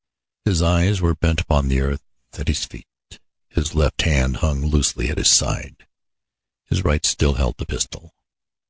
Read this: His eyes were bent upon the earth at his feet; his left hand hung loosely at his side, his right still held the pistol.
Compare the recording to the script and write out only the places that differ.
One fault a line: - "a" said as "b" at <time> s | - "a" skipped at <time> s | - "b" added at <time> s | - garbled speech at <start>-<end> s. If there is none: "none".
none